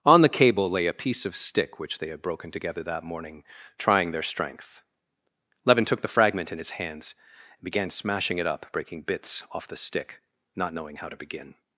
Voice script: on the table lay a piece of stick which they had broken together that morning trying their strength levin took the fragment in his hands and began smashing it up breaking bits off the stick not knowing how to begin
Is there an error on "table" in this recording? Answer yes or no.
yes